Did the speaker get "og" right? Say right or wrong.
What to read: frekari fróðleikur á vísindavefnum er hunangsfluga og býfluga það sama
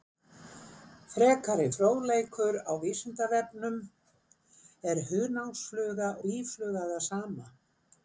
wrong